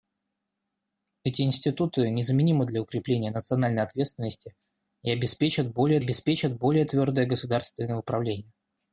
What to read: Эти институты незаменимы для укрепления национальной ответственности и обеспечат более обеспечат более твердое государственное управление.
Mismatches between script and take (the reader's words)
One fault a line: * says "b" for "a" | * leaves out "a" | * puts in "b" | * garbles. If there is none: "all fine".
all fine